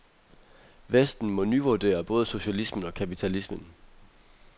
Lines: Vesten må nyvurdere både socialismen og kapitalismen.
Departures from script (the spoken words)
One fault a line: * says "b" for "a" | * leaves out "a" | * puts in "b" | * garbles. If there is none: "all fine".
all fine